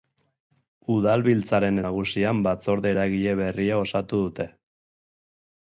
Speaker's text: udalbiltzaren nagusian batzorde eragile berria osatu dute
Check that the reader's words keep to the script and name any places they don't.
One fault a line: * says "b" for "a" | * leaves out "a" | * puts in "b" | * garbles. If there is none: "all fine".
all fine